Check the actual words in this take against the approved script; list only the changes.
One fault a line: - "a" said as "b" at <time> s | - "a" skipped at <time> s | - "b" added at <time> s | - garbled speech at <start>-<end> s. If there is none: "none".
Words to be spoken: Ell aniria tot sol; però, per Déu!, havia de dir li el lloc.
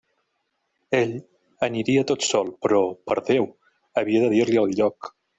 none